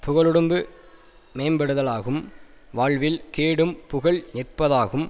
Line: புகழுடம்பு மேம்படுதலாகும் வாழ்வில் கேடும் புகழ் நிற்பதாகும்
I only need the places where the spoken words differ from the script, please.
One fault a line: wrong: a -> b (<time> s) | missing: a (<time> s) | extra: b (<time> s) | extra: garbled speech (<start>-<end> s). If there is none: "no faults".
no faults